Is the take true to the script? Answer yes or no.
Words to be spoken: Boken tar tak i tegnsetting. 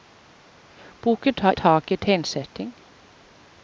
yes